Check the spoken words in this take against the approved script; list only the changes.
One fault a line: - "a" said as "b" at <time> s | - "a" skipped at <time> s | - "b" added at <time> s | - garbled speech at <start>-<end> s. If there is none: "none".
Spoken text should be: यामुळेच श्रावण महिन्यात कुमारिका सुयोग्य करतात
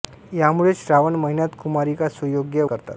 none